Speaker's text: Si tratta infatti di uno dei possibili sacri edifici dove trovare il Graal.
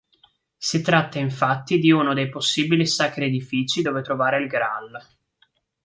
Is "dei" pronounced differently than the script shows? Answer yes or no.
no